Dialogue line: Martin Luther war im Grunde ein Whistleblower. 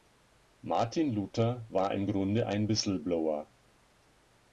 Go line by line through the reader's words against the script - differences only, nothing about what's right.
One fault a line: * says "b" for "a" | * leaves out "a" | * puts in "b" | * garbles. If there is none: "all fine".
all fine